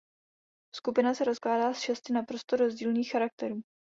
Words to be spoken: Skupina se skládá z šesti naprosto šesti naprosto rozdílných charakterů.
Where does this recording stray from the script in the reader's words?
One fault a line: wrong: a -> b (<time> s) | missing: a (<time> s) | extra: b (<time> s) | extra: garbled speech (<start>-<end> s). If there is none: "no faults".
missing: šesti naprosto (2.5 s)